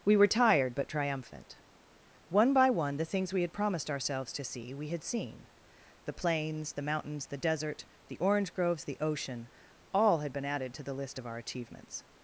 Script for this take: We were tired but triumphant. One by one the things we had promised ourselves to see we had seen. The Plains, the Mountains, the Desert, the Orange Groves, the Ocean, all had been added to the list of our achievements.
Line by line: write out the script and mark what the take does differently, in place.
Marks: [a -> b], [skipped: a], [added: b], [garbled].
We were tired but triumphant. One by one the things we had promised ourselves to see we had seen. The Plains, the Mountains, the Desert, the Orange Groves, the Ocean, all had been added to the list of our achievements.